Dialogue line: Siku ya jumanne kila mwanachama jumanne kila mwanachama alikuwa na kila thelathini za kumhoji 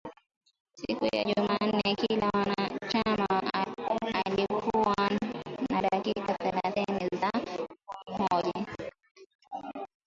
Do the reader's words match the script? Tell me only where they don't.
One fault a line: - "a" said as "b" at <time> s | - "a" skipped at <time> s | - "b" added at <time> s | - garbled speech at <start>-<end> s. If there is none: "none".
- "jumanne kila mwanachama" skipped at 3.3 s
- "kila" said as "dakika" at 5.8 s